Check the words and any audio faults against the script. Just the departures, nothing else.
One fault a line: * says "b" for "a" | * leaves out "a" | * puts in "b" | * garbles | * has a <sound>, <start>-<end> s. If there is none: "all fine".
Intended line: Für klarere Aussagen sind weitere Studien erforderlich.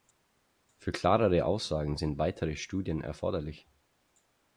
all fine